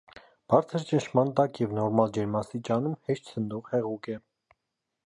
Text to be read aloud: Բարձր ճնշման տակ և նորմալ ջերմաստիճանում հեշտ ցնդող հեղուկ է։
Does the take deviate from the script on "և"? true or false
false